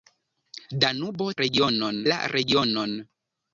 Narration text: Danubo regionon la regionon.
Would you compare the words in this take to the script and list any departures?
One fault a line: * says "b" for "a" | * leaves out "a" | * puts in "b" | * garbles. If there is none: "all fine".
all fine